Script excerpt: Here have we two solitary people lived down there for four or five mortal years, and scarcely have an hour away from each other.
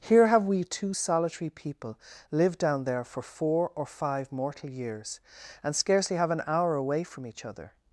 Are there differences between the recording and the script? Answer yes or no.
no